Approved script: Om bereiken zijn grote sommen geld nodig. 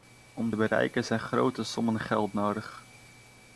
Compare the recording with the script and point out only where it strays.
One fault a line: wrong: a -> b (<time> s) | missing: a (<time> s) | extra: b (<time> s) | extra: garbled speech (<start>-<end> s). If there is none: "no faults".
no faults